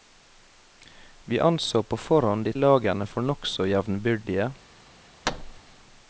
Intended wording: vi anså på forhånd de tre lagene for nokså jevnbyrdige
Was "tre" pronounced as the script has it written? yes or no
no